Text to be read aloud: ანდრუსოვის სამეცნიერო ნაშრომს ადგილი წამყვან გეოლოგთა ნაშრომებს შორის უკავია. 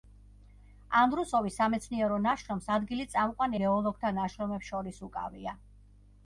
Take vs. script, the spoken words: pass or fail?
pass